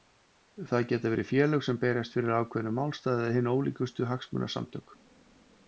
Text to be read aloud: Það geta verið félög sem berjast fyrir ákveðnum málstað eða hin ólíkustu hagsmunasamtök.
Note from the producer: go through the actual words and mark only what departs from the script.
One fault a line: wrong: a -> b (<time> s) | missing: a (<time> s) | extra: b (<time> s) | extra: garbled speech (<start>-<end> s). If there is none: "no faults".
no faults